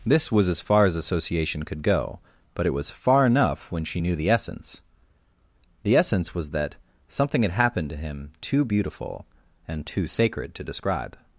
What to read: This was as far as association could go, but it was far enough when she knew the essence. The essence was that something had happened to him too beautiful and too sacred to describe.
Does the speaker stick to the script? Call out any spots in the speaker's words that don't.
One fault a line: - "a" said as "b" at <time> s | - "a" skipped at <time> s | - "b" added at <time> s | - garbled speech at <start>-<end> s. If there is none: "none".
none